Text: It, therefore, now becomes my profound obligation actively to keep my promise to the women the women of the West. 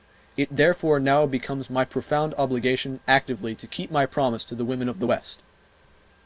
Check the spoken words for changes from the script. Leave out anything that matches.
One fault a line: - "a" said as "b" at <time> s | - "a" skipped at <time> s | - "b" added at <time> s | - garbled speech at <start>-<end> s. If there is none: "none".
- "the women" skipped at 4.9 s